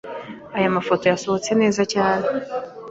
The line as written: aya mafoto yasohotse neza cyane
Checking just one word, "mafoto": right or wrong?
right